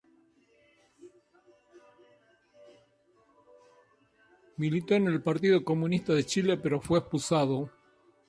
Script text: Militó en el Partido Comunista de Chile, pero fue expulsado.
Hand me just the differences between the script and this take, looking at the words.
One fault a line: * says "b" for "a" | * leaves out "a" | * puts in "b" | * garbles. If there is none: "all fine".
all fine